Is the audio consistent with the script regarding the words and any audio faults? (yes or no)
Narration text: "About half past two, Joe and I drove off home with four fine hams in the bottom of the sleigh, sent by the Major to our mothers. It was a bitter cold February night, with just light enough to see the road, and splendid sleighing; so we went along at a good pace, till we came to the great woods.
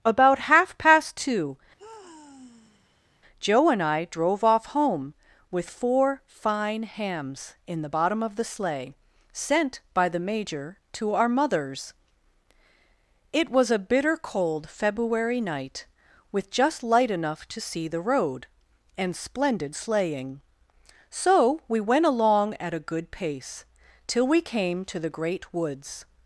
no